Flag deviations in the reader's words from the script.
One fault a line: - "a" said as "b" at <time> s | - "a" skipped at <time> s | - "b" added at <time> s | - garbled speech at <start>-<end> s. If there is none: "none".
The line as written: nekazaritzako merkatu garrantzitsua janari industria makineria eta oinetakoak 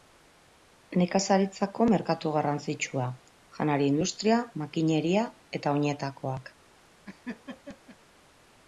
none